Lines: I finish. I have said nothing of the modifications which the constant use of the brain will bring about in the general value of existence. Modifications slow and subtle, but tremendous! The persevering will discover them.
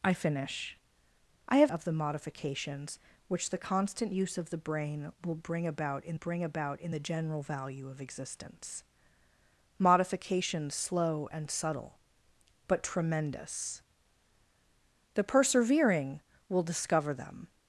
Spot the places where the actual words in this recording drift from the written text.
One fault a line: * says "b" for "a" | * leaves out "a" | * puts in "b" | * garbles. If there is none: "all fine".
* leaves out "said nothing"
* puts in "bring about in"